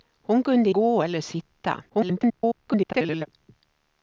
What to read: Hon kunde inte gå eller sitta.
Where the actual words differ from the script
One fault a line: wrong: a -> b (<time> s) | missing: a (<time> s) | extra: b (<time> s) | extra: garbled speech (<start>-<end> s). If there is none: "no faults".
missing: inte (0.7 s)
extra: garbled speech (1.9-3.3 s)